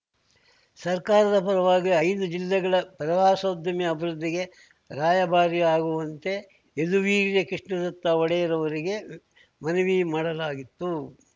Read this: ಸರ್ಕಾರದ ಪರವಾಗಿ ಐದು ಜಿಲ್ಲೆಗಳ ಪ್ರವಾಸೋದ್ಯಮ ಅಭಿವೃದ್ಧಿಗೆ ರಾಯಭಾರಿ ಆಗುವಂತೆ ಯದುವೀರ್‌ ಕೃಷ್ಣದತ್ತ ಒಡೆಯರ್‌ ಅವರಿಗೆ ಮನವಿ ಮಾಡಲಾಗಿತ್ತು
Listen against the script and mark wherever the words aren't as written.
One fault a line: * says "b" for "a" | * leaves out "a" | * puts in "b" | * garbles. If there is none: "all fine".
all fine